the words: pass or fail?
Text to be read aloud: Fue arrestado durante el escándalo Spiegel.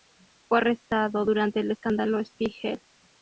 pass